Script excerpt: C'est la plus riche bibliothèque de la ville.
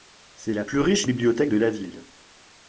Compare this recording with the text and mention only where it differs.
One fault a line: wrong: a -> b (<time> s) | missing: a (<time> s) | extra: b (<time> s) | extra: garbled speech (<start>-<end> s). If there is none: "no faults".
no faults